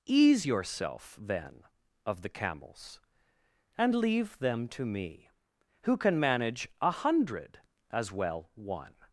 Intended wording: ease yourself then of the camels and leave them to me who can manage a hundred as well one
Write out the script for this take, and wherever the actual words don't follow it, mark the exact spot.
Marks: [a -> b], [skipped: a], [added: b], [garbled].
ease yourself then of the camels and leave them to me who can manage a hundred as well one